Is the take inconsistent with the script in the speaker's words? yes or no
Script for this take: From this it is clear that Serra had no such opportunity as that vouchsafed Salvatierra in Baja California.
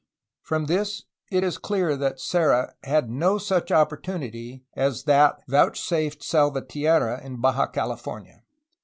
no